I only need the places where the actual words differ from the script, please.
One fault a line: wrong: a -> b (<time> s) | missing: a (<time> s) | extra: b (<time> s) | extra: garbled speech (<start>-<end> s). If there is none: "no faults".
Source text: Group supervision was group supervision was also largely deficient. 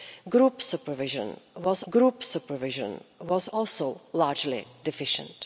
no faults